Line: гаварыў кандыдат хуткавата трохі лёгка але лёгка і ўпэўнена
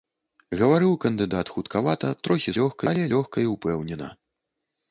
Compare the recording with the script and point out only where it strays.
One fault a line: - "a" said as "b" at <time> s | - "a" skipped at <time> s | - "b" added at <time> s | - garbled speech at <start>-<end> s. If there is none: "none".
none